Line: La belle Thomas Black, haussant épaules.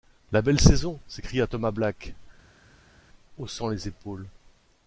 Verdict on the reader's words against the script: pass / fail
fail